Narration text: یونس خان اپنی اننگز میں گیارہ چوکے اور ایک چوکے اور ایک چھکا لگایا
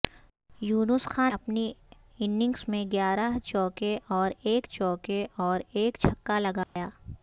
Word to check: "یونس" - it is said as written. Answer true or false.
true